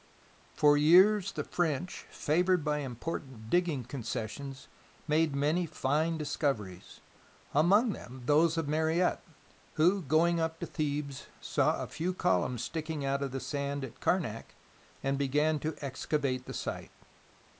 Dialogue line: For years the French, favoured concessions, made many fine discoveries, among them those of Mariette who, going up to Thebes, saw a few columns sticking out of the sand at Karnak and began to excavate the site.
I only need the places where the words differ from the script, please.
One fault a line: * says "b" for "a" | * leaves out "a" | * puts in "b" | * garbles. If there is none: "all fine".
* puts in "by important digging"